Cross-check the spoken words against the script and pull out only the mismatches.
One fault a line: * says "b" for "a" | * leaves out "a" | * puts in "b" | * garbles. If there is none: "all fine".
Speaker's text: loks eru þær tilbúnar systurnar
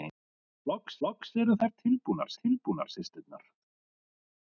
* puts in "loks"
* puts in "tilbúnar"